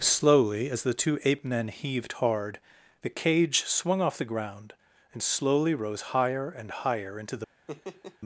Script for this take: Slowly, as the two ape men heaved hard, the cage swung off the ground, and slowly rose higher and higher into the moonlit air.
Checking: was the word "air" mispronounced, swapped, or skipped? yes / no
yes